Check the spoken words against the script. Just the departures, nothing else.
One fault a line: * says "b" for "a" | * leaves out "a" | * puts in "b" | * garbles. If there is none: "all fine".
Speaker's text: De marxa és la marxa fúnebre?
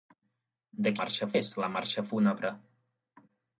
all fine